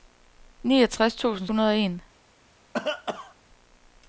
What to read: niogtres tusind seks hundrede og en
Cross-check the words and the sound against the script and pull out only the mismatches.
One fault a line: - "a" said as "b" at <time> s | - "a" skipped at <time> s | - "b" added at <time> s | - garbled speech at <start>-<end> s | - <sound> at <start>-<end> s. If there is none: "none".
- "seks" skipped at 1.5 s
- cough at 2.7-3.4 s